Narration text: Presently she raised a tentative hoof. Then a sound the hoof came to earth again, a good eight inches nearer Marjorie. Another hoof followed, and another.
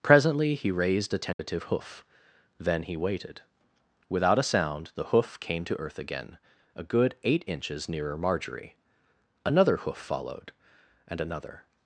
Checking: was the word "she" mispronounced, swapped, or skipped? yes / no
yes